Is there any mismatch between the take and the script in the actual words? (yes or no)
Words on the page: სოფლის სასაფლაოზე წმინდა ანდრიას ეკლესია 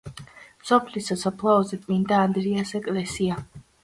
no